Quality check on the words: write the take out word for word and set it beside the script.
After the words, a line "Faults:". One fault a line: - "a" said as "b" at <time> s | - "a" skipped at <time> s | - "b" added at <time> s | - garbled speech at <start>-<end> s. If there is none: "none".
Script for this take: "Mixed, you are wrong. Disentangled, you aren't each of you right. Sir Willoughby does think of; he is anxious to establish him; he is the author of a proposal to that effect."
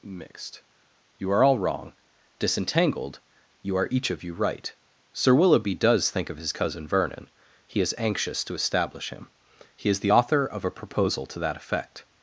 "Mixed, you are all wrong. Disentangled, you are each of you right. Sir Willoughby does think of his cousin Vernon; he is anxious to establish him; he is the author of a proposal to that effect."
Faults:
- "all" added at 1.4 s
- "aren't" said as "are" at 3.8 s
- "his cousin Vernon" added at 6.4 s